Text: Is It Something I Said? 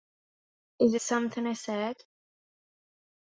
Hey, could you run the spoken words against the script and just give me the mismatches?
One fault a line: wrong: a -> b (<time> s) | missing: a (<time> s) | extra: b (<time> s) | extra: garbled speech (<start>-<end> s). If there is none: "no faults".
missing: It (0.9 s)